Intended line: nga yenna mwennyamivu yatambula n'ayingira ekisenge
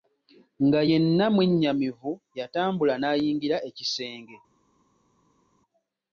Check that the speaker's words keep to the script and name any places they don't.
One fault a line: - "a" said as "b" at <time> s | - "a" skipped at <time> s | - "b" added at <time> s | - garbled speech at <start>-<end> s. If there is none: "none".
none